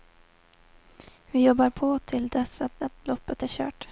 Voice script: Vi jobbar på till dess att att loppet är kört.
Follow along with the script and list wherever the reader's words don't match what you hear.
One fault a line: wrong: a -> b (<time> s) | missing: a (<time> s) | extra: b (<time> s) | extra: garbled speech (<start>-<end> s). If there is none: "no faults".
no faults